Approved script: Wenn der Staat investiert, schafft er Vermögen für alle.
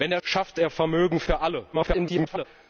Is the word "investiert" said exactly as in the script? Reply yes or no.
no